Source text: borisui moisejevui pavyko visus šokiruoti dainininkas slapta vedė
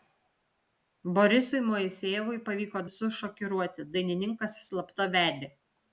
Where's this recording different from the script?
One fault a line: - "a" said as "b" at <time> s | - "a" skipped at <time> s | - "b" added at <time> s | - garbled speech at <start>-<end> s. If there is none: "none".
none